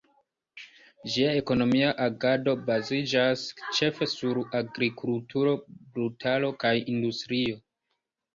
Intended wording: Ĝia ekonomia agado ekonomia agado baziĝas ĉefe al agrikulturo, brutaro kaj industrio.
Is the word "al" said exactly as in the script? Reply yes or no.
no